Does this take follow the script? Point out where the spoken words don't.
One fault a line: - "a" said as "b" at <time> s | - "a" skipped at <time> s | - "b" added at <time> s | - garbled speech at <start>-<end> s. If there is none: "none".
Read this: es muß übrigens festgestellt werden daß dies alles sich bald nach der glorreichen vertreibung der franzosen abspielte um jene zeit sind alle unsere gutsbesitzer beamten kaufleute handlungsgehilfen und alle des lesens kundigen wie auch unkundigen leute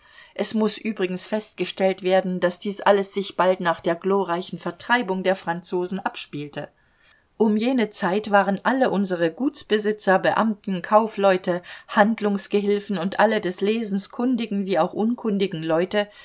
- "sind" said as "waren" at 8.3 s